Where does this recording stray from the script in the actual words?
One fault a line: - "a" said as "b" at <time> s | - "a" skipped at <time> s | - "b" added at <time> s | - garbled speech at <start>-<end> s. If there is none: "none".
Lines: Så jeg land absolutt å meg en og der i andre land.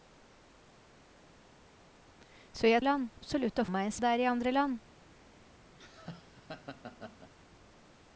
none